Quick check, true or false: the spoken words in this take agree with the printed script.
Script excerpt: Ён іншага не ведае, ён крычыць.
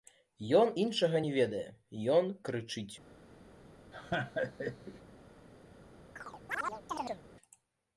true